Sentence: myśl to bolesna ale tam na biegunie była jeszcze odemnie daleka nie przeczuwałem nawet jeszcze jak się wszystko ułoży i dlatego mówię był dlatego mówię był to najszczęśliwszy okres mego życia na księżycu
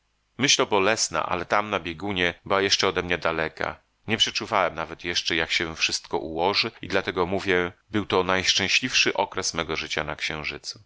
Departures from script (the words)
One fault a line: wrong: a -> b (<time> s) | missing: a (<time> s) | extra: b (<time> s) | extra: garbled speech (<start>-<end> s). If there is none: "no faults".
missing: dlatego mówię był (8.1 s)